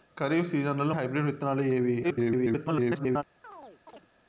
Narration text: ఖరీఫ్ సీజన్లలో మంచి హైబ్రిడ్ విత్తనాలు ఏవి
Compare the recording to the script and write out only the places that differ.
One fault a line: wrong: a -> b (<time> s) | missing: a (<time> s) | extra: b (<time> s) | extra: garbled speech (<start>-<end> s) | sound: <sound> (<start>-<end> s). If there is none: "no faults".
missing: మంచి (0.9 s)
extra: garbled speech (2.0-3.2 s)
sound: chirp (3.4-4.1 s)